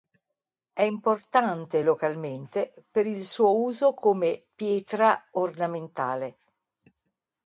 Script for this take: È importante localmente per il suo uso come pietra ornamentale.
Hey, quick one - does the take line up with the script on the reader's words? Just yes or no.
yes